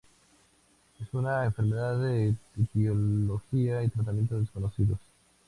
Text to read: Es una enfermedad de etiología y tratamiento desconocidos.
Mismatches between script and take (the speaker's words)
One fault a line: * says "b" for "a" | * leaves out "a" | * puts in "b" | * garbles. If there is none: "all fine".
all fine